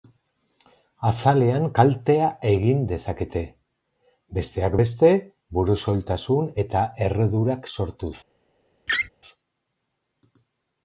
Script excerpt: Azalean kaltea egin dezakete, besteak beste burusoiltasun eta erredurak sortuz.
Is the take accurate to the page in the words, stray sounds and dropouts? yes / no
no